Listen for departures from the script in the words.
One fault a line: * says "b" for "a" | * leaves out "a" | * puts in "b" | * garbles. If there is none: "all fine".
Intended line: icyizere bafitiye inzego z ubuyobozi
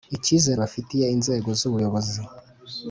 all fine